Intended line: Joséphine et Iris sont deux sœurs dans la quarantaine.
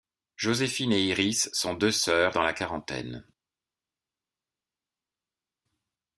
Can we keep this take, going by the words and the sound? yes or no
yes